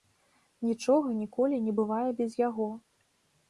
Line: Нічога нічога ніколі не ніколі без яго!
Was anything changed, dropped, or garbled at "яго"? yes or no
no